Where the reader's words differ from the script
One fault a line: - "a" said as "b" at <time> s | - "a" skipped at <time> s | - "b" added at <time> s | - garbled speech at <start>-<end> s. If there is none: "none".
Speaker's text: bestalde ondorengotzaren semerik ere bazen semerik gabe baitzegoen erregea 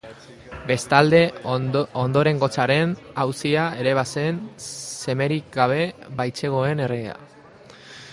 - "semerik" said as "auzia" at 3.2 s